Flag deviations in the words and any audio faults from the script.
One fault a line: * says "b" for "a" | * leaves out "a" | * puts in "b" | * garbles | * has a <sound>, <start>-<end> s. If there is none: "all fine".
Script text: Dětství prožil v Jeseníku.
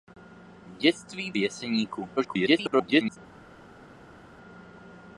* leaves out "prožil"
* garbles